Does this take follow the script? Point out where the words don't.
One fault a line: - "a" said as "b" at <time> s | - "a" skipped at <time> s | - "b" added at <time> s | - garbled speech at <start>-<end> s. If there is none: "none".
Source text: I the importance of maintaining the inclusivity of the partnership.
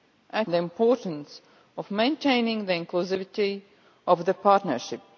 none